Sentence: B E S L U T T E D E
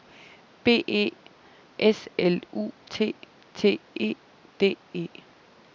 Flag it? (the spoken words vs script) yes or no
no